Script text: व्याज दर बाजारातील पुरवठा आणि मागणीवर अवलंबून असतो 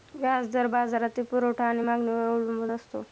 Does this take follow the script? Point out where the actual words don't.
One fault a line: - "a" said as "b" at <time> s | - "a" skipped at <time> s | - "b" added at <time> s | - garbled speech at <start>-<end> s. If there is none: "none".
none